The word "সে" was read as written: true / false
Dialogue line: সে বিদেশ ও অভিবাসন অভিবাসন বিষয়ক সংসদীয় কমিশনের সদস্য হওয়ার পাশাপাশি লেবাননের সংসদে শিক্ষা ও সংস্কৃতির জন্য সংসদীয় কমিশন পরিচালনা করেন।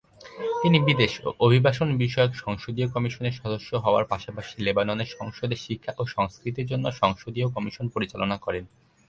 false